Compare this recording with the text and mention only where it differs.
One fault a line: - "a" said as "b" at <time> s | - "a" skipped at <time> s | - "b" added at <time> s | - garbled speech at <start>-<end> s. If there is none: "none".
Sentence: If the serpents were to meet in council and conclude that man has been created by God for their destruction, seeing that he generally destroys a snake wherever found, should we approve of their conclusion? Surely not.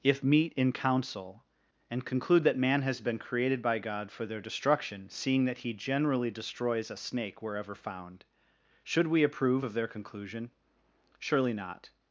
- "the serpents were to" skipped at 0.2 s